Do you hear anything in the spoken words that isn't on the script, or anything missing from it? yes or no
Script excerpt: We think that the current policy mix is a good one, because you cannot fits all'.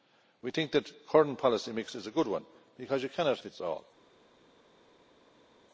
no